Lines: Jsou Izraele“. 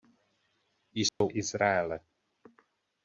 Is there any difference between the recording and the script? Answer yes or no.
no